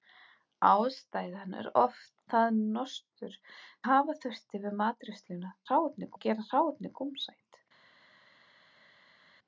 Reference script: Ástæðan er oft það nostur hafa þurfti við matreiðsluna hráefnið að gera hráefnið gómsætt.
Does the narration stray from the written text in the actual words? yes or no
no